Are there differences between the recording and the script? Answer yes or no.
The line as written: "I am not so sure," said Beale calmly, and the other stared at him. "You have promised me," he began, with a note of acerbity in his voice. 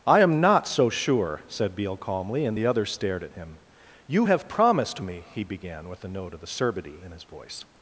no